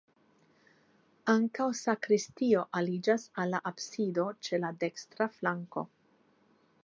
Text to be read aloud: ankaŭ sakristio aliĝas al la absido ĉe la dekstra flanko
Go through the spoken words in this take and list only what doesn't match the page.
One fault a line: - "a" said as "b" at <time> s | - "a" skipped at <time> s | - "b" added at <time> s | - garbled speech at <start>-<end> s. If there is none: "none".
none